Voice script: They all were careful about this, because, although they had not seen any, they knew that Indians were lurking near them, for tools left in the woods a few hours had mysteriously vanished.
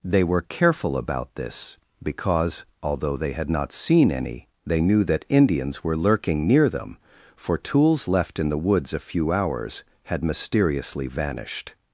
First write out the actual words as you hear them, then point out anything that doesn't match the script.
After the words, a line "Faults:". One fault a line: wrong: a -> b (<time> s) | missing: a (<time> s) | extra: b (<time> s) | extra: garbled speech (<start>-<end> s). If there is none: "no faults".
They were careful about this, because, although they had not seen any, they knew that Indians were lurking near them, for tools left in the woods a few hours had mysteriously vanished.
Faults:
missing: all (0.2 s)